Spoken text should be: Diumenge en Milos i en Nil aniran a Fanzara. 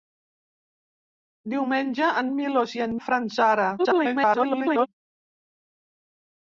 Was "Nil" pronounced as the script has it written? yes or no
no